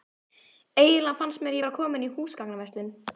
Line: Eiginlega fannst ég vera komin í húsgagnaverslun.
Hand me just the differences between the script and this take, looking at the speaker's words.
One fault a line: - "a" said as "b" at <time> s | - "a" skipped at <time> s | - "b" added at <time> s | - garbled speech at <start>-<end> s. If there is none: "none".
- "mér" added at 1.5 s